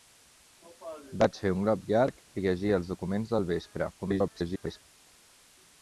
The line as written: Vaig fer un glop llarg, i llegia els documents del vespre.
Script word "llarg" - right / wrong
right